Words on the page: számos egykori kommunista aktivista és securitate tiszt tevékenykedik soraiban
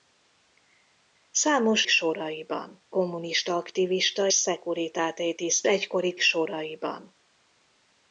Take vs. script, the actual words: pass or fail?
fail